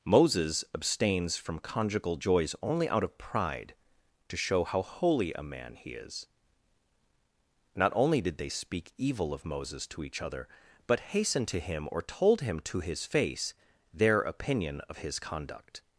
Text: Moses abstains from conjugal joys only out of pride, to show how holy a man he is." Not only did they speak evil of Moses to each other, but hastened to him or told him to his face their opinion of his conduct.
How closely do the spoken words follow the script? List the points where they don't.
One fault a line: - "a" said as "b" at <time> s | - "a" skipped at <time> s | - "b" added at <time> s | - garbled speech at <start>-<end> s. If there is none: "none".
none